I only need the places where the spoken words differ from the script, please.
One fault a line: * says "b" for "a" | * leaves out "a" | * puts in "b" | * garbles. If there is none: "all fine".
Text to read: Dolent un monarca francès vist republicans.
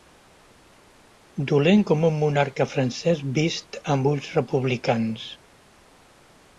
* puts in "com"
* puts in "amb ulls"